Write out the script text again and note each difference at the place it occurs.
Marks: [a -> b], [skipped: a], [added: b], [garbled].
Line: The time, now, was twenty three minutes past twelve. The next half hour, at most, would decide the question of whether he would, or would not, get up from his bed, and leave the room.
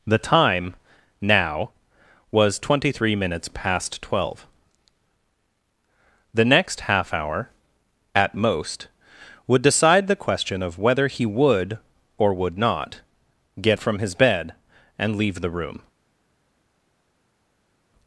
The time, now, was twenty three minutes past twelve. The next half hour, at most, would decide the question of whether he would, or would not, get [skipped: up] from his bed, and leave the room.